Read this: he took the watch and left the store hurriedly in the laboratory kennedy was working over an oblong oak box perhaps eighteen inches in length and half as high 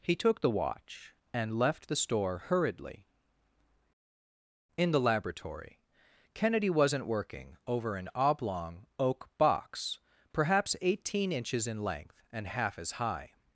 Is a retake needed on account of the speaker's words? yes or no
yes